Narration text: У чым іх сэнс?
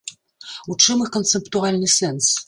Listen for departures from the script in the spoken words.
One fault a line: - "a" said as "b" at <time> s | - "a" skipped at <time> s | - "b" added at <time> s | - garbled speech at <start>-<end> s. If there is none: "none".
- "канцэптуальны" added at 1.2 s